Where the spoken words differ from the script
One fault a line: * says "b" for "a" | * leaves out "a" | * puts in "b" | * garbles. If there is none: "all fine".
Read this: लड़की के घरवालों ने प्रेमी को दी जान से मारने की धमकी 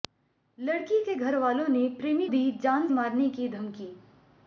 * leaves out "को"
* leaves out "से"